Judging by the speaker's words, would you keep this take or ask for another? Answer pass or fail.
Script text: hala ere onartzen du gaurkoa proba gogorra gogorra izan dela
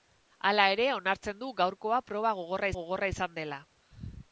pass